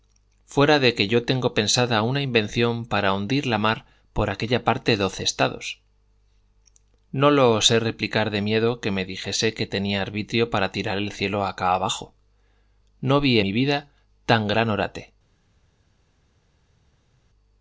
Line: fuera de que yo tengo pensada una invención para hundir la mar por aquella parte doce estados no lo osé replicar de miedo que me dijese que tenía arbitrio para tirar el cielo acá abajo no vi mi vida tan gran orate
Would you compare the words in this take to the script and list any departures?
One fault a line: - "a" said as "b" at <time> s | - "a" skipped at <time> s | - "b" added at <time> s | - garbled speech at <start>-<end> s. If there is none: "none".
none